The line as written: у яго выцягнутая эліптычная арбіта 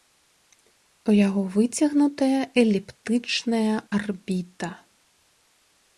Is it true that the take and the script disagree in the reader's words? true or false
false